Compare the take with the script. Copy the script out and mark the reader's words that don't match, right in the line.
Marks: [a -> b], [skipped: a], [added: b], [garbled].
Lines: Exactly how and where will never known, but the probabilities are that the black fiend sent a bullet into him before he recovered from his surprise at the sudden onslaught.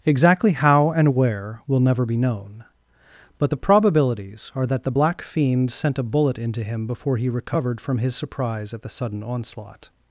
Exactly how and where will never [added: be] known, but the probabilities are that the black fiend sent a bullet into him before he recovered from his surprise at the sudden onslaught.